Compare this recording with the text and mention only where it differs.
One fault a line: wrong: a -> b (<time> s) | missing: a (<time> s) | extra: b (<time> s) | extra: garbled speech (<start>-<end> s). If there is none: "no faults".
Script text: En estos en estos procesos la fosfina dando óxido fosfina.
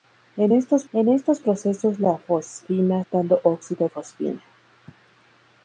no faults